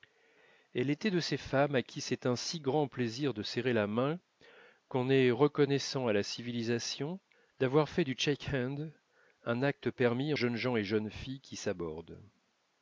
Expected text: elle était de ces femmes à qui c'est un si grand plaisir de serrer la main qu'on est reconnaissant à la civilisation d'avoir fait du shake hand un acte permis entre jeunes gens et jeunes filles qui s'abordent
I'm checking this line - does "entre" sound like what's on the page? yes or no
no